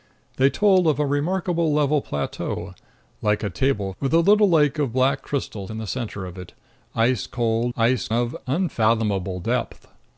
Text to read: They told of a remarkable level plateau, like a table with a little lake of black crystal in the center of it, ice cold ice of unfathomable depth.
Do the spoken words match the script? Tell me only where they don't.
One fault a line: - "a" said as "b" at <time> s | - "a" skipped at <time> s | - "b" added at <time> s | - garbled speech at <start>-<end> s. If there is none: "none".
none